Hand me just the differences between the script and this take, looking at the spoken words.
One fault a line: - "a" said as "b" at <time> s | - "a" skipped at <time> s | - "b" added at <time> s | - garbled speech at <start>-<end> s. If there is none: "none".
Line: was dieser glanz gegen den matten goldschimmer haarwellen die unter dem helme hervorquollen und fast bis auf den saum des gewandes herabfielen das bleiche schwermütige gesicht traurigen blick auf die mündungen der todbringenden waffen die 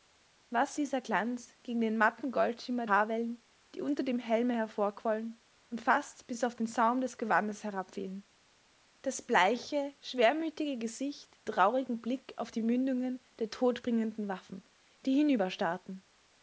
none